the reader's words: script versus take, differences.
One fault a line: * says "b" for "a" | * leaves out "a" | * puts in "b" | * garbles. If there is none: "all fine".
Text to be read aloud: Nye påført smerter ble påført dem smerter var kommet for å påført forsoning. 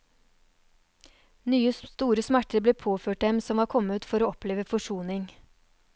* says "store" for "påført"
* says "som" for "smerter"
* says "oppleve" for "påført"